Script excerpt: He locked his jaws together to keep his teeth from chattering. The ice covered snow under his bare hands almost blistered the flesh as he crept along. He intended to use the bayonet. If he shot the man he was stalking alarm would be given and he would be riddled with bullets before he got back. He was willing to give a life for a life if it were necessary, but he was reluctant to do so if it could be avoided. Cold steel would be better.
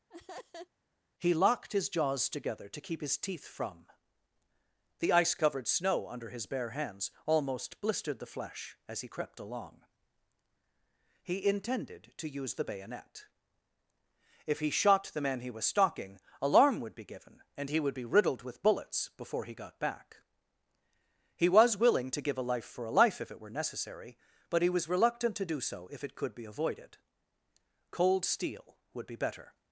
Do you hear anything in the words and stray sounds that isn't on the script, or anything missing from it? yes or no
yes